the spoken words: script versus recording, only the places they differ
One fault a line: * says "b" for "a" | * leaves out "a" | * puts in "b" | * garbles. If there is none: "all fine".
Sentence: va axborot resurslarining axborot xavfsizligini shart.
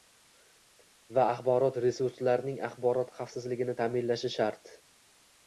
* puts in "ta'minlashi"